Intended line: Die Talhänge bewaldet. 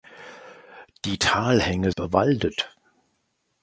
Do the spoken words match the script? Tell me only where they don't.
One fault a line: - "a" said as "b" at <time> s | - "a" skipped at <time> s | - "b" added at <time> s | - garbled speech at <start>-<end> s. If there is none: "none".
none